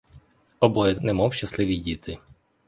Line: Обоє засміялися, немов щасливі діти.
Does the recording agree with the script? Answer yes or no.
no